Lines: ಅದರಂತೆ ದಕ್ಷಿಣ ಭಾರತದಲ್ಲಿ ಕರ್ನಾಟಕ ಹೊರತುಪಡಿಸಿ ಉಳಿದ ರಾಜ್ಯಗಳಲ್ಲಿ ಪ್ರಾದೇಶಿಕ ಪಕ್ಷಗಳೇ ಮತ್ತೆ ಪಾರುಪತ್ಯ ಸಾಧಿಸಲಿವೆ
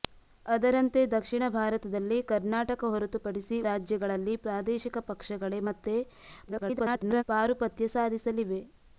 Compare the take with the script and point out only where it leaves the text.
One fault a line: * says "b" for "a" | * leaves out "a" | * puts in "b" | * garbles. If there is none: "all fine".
* leaves out "ಉಳಿದ"
* garbles